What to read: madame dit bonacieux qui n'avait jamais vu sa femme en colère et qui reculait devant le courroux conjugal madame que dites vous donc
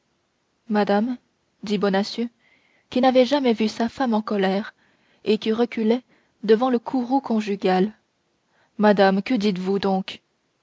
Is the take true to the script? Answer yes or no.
yes